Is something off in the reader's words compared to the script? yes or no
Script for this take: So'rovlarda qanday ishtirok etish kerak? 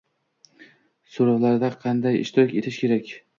no